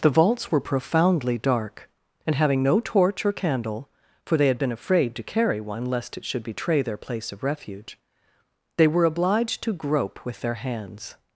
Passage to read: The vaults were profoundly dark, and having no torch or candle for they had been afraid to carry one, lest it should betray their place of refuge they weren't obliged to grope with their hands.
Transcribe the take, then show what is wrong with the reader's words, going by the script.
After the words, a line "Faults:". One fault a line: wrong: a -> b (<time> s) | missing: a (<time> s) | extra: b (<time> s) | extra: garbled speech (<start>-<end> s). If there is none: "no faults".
The vaults were profoundly dark, and having no torch or candle for they had been afraid to carry one, lest it should betray their place of refuge they were obliged to grope with their hands.
Faults:
wrong: weren't -> were (8.9 s)